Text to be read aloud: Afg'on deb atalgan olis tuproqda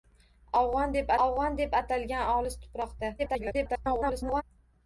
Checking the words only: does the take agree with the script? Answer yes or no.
no